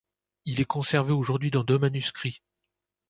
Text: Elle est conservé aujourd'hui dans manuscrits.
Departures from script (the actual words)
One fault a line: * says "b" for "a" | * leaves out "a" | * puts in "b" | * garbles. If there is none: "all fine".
* says "Il" for "Elle"
* puts in "deux"